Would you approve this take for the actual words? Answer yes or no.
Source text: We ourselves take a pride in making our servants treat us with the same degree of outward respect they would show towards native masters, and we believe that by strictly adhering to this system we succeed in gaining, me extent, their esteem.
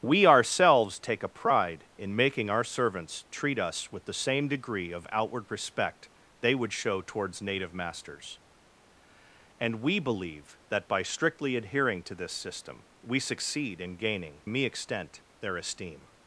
yes